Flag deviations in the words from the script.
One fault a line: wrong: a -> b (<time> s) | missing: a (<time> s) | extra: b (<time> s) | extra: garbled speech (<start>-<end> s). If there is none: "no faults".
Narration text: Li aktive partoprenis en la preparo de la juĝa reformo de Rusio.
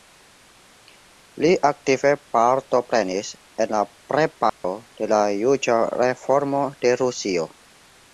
no faults